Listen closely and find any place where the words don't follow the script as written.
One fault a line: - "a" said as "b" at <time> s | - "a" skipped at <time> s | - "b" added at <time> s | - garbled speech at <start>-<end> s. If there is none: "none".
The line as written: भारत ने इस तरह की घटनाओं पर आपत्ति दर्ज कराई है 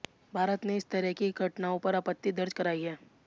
none